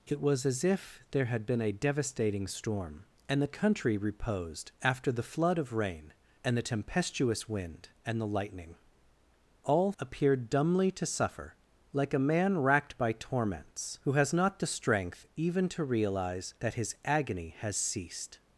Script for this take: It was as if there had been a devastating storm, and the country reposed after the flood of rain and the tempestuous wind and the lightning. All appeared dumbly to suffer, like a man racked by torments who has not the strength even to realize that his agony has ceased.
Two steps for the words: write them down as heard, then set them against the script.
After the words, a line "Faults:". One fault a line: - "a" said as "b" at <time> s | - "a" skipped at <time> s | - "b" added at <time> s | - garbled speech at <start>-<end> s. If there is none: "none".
It was as if there had been a devastating storm, and the country reposed after the flood of rain and the tempestuous wind and the lightning. All appeared dumbly to suffer, like a man racked by torments who has not the strength even to realize that his agony has ceased.
Faults:
none